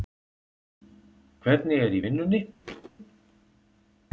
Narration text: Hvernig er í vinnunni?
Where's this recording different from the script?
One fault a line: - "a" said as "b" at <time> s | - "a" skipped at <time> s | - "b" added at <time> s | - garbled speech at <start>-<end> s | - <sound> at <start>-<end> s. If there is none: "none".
- thud at 2.6-2.9 s